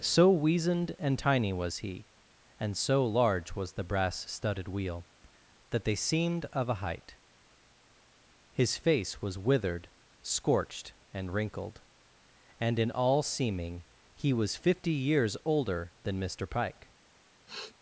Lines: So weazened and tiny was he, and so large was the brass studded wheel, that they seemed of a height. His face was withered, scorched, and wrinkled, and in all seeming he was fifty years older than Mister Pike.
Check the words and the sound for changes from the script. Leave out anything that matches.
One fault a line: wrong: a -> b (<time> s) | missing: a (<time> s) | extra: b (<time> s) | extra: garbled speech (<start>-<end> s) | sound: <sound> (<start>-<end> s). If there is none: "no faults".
sound: sniff (17.5-17.7 s)